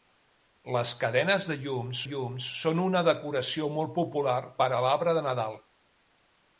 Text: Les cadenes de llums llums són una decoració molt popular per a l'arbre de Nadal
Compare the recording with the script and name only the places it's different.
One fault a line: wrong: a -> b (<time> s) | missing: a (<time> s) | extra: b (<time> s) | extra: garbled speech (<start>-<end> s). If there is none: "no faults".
no faults